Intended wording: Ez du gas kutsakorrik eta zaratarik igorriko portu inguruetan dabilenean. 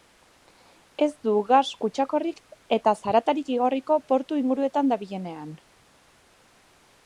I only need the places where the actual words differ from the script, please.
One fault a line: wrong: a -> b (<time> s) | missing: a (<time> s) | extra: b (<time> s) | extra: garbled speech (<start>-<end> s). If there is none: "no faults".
no faults